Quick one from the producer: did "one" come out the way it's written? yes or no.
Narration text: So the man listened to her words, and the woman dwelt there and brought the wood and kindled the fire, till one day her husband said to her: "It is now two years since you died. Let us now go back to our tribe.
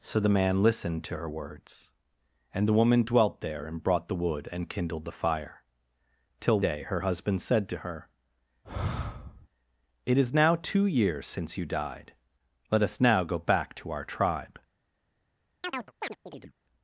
no